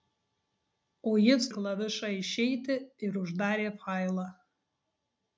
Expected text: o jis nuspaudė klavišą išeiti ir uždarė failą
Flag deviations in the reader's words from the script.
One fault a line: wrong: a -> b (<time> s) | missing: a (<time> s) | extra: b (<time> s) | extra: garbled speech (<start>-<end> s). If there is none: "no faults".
missing: nuspaudė (1.5 s)